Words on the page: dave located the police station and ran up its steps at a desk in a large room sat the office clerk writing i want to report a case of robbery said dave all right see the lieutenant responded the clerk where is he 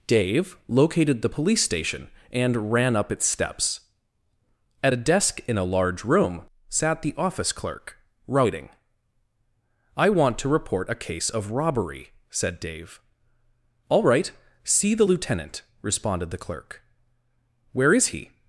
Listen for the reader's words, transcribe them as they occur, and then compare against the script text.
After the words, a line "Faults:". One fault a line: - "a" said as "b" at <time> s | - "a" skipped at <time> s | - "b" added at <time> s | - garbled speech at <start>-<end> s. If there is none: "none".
dave located the police station and ran up its steps at a desk in a large room sat the office clerk writing i want to report a case of robbery said dave all right see the lieutenant responded the clerk where is he
Faults:
none